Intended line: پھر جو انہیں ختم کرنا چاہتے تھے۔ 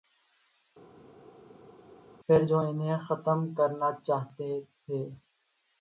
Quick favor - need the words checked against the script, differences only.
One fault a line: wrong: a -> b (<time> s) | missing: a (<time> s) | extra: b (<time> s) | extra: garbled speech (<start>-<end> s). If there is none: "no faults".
no faults